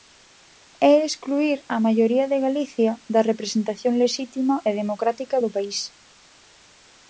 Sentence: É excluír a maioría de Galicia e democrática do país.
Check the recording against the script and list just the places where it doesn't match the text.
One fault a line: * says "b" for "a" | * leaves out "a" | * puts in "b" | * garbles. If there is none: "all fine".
* puts in "da representación lexítima"